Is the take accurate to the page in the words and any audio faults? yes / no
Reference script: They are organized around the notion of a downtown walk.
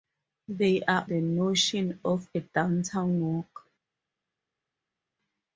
no